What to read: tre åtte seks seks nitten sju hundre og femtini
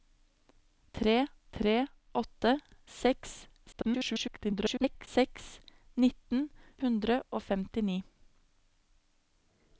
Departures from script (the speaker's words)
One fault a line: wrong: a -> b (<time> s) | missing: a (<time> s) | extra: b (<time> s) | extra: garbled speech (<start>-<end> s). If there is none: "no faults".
extra: tre (1.6 s)
extra: garbled speech (3.7-5.1 s)
missing: sju (6.4 s)